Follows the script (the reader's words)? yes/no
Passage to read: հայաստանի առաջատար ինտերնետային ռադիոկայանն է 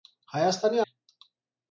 no